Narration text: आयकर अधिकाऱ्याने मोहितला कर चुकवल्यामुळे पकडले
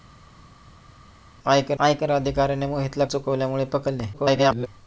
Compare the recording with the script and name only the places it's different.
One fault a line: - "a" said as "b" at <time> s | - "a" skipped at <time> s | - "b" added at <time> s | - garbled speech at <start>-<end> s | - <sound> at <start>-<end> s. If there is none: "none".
- "आयकर" added at 1.8 s
- "कर" skipped at 3.0 s
- garbled speech at 4.1-4.7 s